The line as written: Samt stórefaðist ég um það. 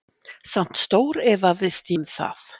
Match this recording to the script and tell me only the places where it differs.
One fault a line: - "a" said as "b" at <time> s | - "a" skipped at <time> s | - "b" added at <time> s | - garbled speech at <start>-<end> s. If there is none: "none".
- "ég" skipped at 2.0 s